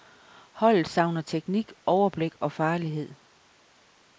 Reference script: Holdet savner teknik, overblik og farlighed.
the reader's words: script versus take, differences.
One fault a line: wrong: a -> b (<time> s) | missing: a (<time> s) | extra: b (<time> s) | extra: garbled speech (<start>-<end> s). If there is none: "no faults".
no faults